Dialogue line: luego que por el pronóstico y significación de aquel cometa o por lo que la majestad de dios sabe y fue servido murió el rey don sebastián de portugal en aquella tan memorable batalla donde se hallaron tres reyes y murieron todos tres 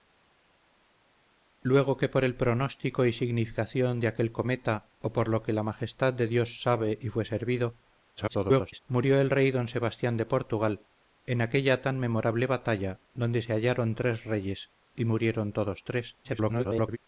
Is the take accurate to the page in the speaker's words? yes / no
no